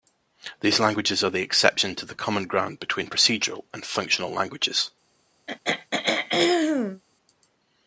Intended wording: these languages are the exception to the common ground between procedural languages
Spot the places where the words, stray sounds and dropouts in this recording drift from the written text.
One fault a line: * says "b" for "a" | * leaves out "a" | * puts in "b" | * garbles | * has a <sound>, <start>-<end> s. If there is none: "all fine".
* puts in "and functional"
* has a throat clearing, 5.5-7.0 s